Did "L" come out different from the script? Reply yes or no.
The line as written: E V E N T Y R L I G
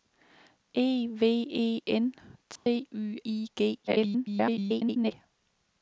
yes